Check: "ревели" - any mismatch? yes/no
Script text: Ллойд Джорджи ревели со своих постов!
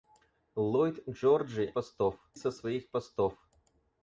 yes